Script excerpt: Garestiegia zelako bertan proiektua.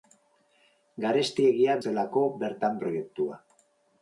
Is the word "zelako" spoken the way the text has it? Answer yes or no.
yes